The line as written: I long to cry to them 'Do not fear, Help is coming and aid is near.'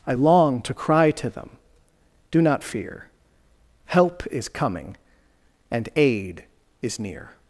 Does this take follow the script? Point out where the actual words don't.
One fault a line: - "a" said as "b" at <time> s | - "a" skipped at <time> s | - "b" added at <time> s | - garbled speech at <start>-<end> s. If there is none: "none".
none